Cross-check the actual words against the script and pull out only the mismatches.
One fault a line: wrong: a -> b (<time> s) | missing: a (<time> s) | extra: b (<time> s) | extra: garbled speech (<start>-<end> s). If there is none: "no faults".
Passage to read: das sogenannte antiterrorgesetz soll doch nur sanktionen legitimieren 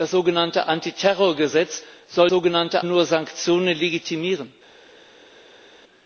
wrong: doch -> sogenannte (2.3 s)